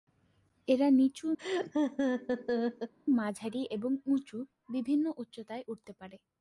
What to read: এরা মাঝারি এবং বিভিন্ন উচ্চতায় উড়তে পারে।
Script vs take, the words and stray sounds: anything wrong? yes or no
yes